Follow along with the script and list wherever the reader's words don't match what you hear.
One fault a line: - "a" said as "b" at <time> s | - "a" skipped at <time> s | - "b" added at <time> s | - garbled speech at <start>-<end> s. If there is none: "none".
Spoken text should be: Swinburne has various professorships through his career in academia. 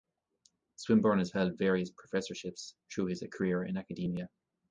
- "held" added at 1.3 s